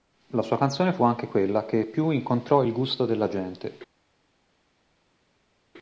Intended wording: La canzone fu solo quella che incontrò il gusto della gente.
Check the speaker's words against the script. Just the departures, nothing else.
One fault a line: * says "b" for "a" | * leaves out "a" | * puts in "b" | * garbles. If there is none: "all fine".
* puts in "sua"
* says "anche" for "solo"
* puts in "più"